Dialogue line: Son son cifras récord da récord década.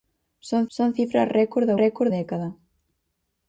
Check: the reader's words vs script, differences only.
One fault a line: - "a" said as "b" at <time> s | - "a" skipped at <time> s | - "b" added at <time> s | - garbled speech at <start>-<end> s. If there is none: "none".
none